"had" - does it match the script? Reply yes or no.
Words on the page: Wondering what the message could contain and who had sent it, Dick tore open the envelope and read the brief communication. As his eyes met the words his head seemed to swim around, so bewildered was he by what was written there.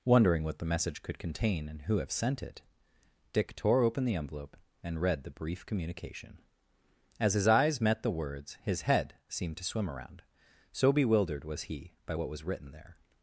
no